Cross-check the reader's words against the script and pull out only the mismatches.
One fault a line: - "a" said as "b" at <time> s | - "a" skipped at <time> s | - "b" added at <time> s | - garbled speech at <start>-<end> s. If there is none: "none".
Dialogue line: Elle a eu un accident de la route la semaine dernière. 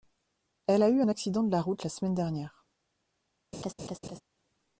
none